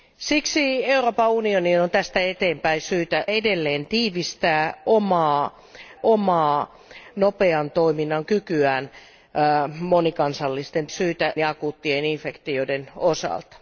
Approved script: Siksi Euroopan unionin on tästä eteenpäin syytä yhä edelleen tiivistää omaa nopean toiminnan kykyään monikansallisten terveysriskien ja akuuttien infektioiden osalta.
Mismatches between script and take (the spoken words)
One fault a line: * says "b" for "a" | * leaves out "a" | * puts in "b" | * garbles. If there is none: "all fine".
* leaves out "yhä"
* puts in "omaa"
* says "syytä" for "terveysriskien"